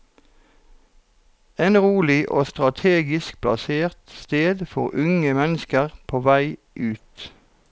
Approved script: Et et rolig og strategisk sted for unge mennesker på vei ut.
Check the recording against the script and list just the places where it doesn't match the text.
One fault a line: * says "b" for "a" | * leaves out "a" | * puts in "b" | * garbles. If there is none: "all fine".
* leaves out "et"
* puts in "plassert"